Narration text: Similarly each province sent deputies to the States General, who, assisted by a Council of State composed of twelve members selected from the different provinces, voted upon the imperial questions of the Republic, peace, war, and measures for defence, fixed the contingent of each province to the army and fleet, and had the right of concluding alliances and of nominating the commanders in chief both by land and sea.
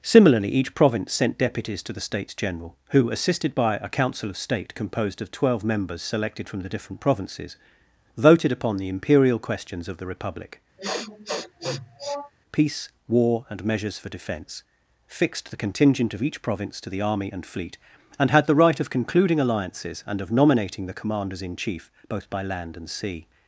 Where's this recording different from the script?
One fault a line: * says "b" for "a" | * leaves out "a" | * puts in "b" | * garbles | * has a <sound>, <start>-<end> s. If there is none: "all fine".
* has a sniff, 10.8-12.3 s